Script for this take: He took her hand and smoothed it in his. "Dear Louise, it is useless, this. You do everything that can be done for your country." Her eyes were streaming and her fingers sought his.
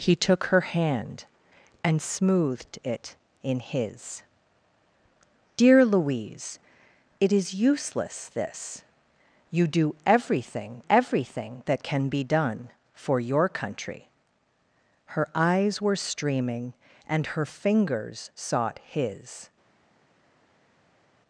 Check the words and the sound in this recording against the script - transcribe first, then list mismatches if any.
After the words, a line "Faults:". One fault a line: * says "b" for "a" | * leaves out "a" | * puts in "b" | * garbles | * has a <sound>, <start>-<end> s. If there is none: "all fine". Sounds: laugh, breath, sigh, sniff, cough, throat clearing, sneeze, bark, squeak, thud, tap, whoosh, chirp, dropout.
He took her hand and smoothed it in his. "Dear Louise, it is useless, this. You do everything everything that can be done for your country." Her eyes were streaming and her fingers sought his.
Faults:
* puts in "everything"